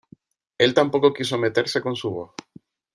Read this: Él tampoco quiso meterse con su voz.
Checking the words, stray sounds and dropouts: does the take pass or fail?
pass